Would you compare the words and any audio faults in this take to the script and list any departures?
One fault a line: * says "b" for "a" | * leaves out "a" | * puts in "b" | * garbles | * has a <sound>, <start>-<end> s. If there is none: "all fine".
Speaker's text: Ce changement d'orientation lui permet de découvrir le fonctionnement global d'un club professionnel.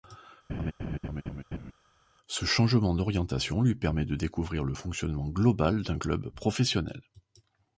* has a laugh, 0.5-1.7 s